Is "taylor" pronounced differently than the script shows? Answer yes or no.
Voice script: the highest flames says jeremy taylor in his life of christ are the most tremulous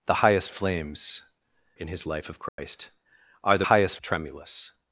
yes